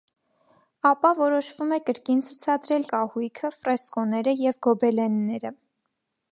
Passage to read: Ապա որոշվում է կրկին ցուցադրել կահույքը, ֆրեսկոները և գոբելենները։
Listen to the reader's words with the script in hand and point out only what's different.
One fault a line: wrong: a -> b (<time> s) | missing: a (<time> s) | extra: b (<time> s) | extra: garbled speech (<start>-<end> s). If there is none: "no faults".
no faults